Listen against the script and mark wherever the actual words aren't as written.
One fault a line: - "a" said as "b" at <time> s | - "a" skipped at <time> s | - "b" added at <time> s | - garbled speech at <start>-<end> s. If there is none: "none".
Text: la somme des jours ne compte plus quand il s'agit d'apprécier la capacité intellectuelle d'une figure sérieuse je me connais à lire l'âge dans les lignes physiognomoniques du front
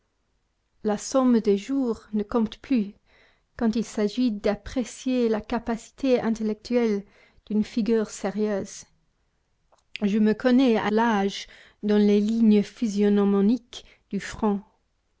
- "lire" skipped at 10.9 s